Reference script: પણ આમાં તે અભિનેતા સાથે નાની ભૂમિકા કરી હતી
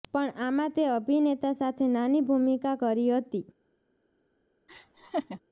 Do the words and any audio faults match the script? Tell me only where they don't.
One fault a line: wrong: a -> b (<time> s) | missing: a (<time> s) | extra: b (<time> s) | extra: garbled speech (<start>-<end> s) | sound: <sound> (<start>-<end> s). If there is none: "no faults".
sound: laugh (4.7-5.4 s)